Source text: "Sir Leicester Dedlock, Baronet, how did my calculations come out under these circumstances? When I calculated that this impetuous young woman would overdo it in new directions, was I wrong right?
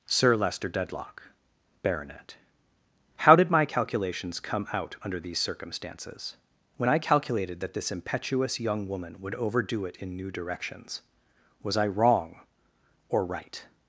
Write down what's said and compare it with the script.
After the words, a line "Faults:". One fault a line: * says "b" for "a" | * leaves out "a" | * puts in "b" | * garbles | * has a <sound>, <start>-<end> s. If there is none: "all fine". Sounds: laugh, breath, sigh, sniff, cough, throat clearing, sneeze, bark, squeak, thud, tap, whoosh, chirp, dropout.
"Sir Leicester Dedlock, Baronet, how did my calculations come out under these circumstances? When I calculated that this impetuous young woman would overdo it in new directions, was I wrong or right?
Faults:
* puts in "or"